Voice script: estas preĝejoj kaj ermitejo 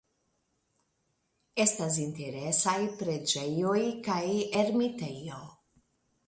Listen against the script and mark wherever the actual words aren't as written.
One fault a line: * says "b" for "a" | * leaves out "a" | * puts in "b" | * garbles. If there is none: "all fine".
* puts in "interesaj"